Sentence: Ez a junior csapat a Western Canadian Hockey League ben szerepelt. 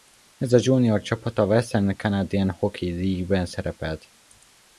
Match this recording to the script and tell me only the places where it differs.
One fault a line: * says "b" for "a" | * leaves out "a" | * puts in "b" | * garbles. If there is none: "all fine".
all fine